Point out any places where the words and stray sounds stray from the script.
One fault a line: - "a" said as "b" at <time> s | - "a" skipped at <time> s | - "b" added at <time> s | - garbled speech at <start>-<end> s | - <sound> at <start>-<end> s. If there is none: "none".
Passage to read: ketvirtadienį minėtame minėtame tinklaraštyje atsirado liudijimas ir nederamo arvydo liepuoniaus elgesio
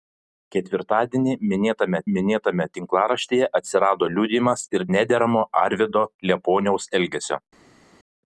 none